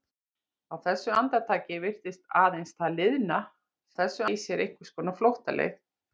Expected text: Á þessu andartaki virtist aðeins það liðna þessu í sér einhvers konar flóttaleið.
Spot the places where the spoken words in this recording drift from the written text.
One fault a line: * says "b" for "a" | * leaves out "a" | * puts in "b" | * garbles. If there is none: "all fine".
all fine